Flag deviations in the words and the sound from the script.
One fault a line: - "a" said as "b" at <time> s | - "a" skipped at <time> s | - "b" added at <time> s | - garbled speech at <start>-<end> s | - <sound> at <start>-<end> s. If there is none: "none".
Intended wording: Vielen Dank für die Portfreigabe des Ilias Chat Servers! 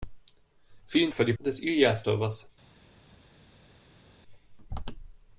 - "Dank" skipped at 1.1 s
- "Portfreigabe" skipped at 1.3 s
- "Chat" skipped at 2.1 s